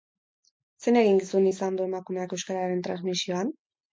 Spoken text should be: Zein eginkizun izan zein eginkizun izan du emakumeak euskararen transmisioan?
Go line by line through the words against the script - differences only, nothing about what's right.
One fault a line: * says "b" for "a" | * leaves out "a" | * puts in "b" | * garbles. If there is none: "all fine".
* leaves out "zein eginkizun izan"